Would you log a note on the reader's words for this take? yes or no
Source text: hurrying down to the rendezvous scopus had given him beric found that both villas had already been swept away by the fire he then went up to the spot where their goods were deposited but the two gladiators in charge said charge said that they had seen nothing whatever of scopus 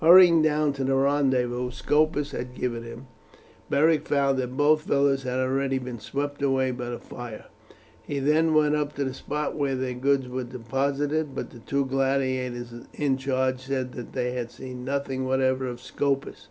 yes